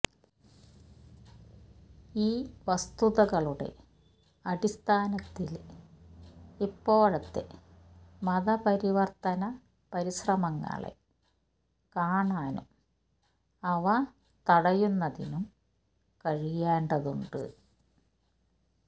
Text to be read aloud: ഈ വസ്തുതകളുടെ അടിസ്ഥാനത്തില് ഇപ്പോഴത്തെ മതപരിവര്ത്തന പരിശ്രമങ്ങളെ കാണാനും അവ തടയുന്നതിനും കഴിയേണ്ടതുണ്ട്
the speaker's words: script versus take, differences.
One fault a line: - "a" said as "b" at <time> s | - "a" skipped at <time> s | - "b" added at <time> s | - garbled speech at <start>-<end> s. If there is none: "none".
none